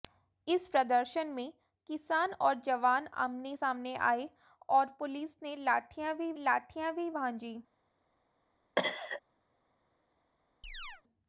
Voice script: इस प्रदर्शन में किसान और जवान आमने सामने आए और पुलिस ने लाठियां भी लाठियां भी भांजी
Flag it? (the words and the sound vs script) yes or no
yes